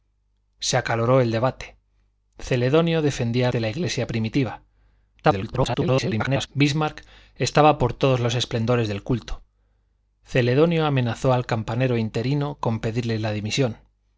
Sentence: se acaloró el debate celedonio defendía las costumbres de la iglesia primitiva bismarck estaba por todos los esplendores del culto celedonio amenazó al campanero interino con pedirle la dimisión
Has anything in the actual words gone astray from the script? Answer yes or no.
yes